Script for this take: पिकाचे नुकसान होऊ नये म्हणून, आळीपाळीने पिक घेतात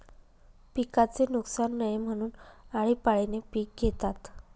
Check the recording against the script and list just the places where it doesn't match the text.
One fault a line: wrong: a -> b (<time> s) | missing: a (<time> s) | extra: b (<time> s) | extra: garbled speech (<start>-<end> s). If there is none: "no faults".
missing: होऊ (1.7 s)